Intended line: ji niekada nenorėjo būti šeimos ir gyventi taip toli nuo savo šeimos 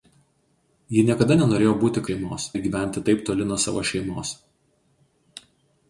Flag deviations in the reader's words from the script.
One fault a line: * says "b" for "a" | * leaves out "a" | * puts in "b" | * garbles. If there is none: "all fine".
all fine